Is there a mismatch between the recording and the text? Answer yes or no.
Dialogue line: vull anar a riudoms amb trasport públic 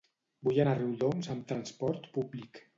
no